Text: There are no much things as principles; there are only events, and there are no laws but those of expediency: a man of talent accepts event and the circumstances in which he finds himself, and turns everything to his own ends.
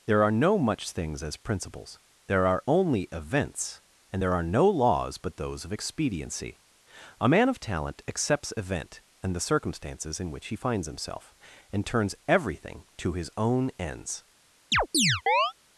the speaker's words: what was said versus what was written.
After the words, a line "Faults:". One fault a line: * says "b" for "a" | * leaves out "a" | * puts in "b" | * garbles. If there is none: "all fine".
There are no much things as principles; there are only events, and there are no laws but those of expediency: a man of talent accepts event and the circumstances in which he finds himself, and turns everything to his own ends.
Faults:
all fine